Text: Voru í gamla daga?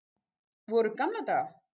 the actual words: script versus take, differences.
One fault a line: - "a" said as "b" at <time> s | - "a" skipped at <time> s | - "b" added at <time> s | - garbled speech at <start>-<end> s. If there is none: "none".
none